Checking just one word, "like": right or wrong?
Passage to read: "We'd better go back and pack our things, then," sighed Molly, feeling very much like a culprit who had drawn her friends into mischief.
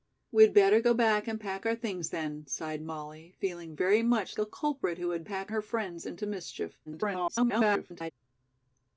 wrong